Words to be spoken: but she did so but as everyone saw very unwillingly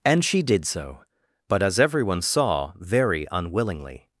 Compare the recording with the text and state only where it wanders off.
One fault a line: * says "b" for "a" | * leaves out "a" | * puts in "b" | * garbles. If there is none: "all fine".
* says "and" for "but"